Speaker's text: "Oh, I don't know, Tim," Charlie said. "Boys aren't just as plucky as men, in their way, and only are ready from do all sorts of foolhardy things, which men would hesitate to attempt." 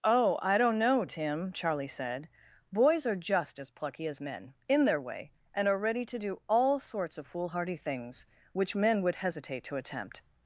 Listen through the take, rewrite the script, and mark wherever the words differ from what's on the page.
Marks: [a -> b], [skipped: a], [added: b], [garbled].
"Oh, I don't know, Tim," Charlie said. "Boys [aren't -> are] just as plucky as men, in their way, and [skipped: only] are ready [from -> to] do all sorts of foolhardy things, which men would hesitate to attempt."